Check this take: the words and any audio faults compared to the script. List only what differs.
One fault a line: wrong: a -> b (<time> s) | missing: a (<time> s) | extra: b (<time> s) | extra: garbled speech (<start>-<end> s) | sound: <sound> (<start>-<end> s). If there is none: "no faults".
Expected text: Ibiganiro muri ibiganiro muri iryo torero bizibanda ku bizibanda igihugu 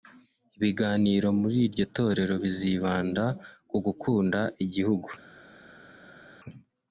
missing: ibiganiro muri (1.6 s)
wrong: bizibanda -> gukunda (3.9 s)